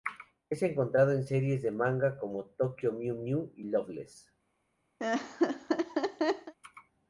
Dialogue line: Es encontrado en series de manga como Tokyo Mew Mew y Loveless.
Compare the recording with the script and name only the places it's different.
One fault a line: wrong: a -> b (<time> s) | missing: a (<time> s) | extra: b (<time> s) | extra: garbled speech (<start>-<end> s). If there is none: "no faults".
no faults